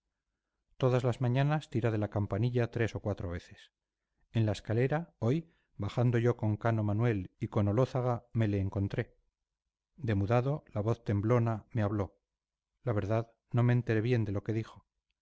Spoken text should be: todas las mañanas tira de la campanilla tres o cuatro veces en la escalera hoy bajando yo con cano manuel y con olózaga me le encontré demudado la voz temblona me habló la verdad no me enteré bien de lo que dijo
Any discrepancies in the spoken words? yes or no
no